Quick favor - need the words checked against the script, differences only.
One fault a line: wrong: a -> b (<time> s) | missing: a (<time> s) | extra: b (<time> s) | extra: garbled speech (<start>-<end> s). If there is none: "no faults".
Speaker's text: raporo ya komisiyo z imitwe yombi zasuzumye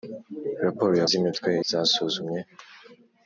missing: komisiyo (1.1 s)
missing: yombi (1.5 s)